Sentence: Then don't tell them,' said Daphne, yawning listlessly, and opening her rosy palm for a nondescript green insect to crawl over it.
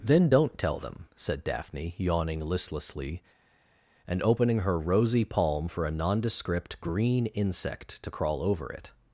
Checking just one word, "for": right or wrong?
right